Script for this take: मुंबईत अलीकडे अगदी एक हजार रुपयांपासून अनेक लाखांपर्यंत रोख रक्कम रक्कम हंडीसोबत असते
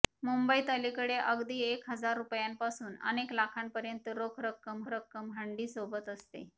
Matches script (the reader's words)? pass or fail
pass